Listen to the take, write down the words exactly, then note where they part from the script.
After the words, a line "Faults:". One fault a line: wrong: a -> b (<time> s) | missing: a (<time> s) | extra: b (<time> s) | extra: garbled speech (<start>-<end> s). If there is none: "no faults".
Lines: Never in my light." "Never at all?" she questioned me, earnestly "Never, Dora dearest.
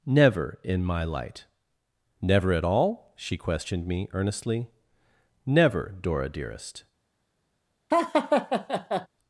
Never in my light." "Never at all?" she questioned me, earnestly "Never, Dora dearest.
Faults:
no faults